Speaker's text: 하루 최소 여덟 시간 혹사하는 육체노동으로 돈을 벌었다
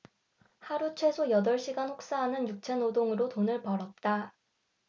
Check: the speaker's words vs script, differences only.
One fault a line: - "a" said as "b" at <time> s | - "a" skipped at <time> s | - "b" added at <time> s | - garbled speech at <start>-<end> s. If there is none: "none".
none